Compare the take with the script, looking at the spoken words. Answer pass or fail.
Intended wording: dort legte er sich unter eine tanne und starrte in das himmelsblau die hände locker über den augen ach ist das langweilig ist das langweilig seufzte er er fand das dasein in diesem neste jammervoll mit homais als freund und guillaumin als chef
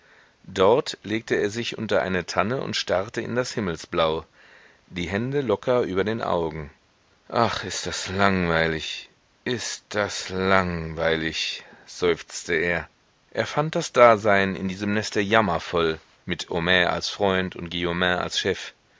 pass